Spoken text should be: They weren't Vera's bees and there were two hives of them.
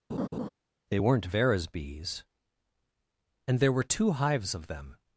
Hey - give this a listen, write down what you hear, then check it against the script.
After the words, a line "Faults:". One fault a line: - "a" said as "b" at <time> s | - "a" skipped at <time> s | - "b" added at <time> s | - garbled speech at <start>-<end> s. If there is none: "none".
They weren't Vera's bees and there were two hives of them.
Faults:
none